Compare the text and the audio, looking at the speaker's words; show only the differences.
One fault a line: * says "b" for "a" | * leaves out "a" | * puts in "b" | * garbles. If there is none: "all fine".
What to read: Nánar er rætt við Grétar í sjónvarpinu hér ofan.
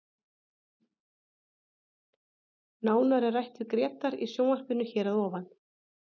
* puts in "að"